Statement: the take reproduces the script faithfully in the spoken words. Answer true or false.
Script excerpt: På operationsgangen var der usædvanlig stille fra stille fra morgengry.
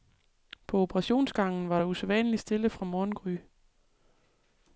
false